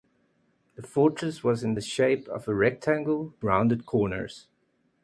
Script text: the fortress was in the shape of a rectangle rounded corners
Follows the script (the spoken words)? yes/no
yes